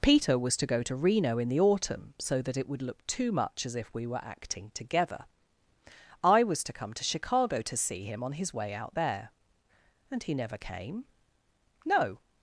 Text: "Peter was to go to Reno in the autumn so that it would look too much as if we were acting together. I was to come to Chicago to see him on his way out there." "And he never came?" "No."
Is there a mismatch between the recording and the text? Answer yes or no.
no